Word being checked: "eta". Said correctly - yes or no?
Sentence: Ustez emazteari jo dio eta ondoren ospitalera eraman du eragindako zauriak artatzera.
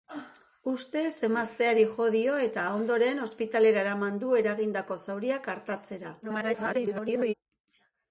yes